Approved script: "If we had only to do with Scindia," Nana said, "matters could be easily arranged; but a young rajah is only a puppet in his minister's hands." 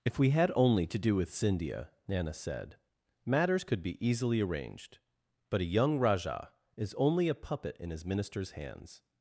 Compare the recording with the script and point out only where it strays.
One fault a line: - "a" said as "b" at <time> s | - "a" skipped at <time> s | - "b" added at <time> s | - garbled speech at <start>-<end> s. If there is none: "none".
none